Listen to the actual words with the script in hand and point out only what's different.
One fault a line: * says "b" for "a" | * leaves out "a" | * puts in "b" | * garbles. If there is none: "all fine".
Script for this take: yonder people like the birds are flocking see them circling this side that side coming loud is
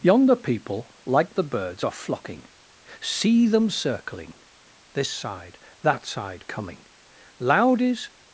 all fine